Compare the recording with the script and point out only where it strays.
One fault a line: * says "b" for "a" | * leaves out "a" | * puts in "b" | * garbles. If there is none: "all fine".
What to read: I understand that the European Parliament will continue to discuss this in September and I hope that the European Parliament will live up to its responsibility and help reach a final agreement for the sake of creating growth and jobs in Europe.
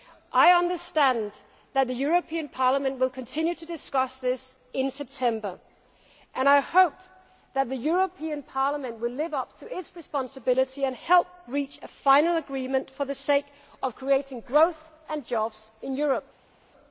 all fine